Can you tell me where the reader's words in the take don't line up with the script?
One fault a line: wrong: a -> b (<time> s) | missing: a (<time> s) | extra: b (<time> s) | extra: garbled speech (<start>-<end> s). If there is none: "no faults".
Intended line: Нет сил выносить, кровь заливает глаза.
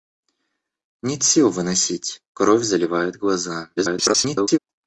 extra: garbled speech (3.8-4.6 s)